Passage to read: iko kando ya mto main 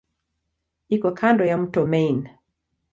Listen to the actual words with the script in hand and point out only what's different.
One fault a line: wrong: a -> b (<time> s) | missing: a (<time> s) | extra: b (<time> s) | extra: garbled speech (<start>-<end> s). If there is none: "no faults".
no faults